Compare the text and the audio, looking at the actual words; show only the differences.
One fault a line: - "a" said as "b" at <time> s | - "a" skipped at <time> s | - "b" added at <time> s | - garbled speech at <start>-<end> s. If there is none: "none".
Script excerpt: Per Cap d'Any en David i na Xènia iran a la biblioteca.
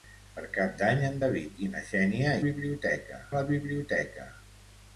- "iran" said as "biblioteca" at 2.5 s